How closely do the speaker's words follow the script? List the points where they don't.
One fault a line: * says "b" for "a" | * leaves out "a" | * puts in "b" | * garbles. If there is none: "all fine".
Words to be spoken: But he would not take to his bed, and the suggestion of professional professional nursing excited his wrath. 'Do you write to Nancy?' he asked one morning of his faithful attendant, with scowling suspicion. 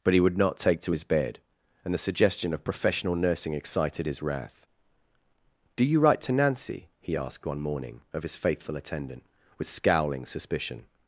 * leaves out "professional"